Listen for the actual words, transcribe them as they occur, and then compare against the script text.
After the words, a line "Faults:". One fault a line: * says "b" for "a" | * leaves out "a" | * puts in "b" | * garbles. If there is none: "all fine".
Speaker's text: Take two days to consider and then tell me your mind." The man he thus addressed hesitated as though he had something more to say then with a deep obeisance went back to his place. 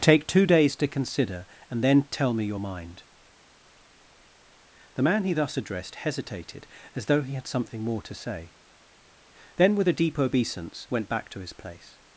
Take two days to consider and then tell me your mind." The man he thus addressed hesitated as though he had something more to say then with a deep obeisance went back to his place.
Faults:
all fine